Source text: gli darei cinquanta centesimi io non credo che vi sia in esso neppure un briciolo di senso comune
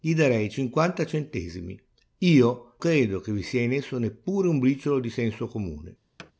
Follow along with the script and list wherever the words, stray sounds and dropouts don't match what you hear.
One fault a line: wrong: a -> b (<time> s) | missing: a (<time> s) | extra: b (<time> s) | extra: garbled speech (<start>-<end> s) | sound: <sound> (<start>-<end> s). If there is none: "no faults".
missing: non (2.8 s)
sound: thud (6.2-6.3 s)